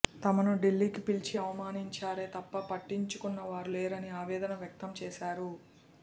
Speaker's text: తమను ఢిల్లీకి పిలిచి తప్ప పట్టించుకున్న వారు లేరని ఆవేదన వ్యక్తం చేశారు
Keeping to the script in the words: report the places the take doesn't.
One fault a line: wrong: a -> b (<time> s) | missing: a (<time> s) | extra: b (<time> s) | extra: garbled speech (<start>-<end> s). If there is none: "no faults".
extra: అవమానించారే (1.4 s)